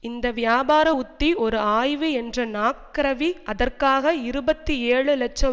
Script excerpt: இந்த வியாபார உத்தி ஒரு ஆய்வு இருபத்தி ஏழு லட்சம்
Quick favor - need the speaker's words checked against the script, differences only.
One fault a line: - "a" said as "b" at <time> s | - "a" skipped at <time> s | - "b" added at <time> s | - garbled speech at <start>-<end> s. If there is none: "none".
- "என்ற நாக்ரவி அதற்காக" added at 2.1 s